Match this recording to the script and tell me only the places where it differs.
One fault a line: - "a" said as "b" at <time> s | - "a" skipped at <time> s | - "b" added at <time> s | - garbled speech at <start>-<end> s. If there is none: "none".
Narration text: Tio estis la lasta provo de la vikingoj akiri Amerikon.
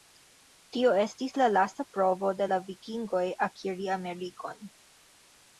none